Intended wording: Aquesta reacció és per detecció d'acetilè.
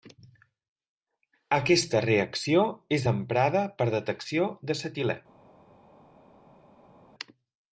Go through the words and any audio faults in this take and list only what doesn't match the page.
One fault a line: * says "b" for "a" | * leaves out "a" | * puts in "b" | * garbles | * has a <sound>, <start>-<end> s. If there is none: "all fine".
* puts in "emprada"